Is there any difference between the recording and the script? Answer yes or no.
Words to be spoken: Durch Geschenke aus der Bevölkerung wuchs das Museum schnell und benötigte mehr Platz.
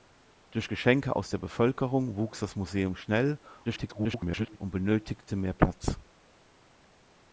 yes